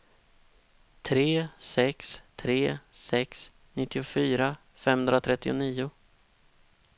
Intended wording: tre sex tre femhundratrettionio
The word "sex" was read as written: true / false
true